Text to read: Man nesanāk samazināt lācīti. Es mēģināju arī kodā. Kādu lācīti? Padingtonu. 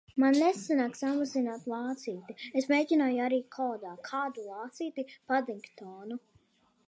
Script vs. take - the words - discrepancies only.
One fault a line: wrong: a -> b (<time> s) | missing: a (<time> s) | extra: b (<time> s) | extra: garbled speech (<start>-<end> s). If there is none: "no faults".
no faults